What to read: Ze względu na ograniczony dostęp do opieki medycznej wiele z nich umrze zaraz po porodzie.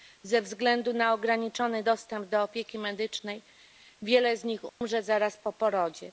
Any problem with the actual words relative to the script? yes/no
no